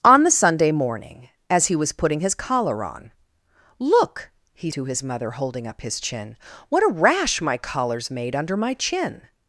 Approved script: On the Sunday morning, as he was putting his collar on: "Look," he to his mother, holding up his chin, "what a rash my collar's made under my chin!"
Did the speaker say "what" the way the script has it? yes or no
yes